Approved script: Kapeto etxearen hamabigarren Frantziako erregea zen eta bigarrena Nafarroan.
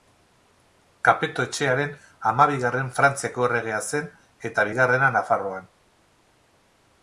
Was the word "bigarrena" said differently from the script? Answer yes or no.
no